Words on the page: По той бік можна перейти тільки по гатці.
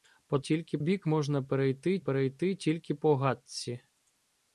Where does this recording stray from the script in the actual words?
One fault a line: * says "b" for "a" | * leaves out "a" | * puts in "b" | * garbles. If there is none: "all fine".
* says "тільки" for "той"
* puts in "перейти"